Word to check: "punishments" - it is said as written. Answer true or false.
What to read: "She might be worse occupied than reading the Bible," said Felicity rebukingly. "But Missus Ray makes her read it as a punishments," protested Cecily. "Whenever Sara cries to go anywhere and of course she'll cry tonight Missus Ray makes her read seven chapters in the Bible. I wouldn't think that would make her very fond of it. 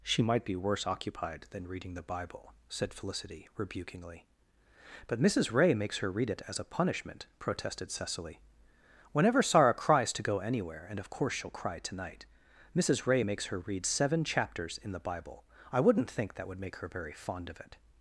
false